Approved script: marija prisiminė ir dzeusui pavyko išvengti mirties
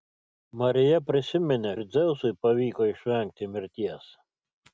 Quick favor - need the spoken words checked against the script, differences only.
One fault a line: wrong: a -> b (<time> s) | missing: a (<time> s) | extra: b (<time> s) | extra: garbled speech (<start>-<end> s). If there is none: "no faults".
no faults